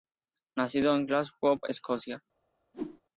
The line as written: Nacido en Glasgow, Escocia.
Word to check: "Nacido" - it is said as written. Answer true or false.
true